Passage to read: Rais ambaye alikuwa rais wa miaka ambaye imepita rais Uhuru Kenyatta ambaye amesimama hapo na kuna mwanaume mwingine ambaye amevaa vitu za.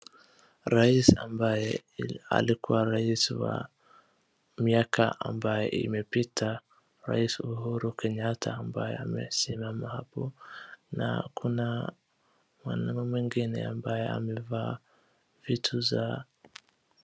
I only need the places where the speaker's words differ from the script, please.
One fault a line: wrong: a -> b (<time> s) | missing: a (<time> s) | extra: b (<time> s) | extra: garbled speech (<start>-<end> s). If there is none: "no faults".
no faults